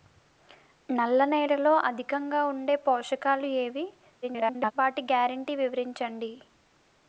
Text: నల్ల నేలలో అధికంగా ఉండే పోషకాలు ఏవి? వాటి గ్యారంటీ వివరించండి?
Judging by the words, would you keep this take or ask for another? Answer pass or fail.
fail